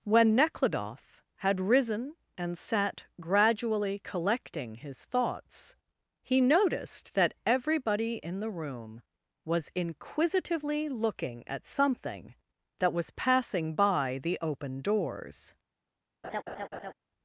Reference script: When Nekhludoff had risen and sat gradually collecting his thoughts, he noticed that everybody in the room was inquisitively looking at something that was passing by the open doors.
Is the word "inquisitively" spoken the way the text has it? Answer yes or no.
yes